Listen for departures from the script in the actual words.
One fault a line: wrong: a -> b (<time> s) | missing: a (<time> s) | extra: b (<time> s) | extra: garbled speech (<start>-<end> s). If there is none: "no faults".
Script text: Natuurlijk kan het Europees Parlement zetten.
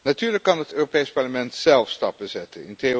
extra: zelf stappen (1.5 s)